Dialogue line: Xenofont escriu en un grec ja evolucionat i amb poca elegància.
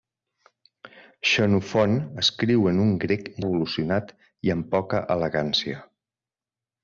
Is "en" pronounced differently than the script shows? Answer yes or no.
no